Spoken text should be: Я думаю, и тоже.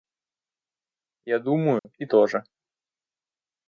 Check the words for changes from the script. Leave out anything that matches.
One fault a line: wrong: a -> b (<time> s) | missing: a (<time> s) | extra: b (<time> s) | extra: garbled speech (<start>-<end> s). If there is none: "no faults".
no faults